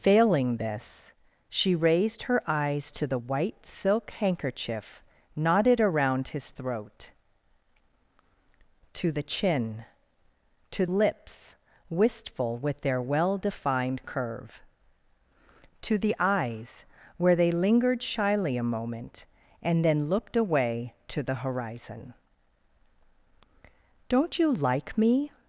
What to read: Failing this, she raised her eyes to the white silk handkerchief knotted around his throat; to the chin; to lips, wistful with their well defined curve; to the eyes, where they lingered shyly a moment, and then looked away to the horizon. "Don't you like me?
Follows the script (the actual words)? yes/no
yes